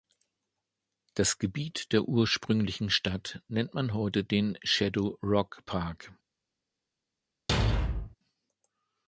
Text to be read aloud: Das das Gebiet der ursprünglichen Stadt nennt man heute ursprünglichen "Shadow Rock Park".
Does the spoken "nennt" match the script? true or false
true